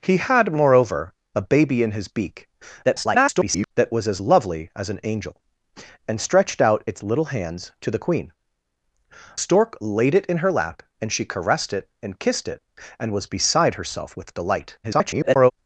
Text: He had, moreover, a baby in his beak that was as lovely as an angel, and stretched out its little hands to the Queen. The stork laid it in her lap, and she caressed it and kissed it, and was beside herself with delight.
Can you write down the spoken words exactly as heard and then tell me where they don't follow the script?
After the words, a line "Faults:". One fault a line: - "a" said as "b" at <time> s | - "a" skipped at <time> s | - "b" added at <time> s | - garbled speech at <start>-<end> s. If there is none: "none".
He had, moreover, a baby in his beak [garbled] that was as lovely as an angel, and stretched out its little hands to the Queen. Stork laid it in her lap, and she caressed it and kissed it, and was beside herself with delight. [garbled]
Faults:
- garbled speech at 2.8-3.7 s
- "The" skipped at 8.3 s
- garbled speech at 14.8-15.5 s